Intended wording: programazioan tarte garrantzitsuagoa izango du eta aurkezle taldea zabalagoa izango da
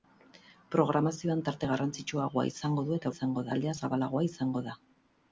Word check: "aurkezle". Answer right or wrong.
wrong